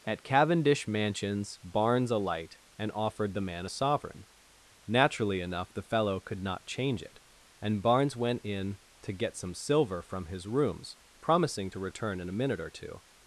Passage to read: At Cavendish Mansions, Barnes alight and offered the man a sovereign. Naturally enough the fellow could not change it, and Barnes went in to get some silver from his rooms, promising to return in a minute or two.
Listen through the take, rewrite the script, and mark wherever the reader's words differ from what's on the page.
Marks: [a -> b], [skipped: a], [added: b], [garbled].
At Cavendish Mansions, Barnes alight and offered the man a sovereign. Naturally enough the fellow could not change it, and Barnes went in to get some silver from his rooms, promising to return in a minute or two.